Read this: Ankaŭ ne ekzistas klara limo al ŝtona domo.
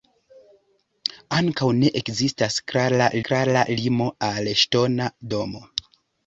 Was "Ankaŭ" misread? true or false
false